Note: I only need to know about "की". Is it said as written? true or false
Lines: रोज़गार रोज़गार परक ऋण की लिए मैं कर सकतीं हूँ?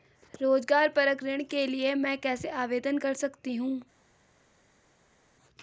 false